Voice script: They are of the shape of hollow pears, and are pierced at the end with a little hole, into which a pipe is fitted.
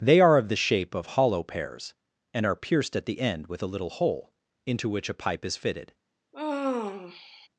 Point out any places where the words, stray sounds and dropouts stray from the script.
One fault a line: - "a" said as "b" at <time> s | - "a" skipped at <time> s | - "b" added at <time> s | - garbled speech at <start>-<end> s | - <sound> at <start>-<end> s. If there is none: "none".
- sigh at 6.3-7.5 s